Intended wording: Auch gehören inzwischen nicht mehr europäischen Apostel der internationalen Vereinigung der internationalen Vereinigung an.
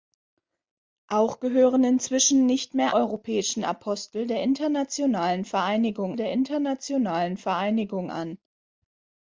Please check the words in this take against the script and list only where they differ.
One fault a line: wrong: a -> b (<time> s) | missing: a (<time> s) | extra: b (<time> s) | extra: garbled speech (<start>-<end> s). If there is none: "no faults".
no faults